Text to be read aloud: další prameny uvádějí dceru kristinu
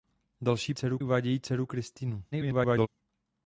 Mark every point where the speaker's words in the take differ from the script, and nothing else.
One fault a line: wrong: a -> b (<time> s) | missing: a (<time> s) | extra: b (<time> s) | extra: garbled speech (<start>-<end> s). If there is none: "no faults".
wrong: prameny -> dceru (0.7 s)
extra: garbled speech (2.3-2.9 s)